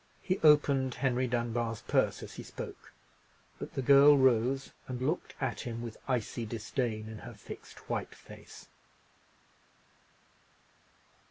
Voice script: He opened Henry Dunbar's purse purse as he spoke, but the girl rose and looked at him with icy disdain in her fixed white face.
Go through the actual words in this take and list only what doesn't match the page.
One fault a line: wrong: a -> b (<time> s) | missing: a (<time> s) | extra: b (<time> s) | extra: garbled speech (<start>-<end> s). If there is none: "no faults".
missing: purse (2.2 s)